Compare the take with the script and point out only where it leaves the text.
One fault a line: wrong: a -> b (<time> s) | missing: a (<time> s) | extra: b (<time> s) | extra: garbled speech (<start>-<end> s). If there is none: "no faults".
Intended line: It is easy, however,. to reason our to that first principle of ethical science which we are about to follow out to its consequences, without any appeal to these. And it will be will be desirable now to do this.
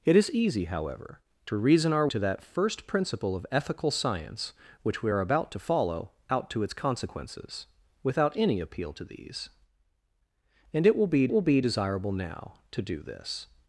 no faults